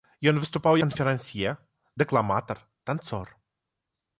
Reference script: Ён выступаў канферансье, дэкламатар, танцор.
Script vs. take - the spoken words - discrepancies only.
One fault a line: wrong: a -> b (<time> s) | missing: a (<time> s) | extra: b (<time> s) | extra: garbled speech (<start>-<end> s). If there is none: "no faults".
no faults